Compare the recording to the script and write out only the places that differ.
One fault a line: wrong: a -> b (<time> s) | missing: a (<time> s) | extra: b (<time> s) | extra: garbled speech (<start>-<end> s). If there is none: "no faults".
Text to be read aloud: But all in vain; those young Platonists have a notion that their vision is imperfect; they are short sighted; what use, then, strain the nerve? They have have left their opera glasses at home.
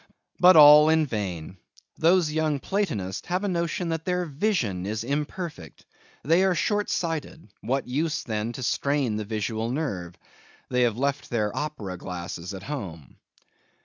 extra: to (8.5 s)
extra: visual (9.2 s)
missing: have (11.0 s)